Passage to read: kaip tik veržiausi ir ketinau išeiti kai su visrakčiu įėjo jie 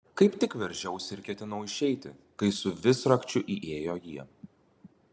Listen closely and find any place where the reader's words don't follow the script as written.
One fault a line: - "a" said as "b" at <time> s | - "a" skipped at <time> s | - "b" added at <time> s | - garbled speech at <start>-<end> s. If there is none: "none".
none